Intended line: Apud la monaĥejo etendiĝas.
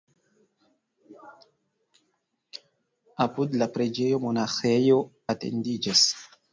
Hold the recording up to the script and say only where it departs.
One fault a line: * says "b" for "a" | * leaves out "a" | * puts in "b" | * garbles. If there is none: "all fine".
* puts in "preĝejo"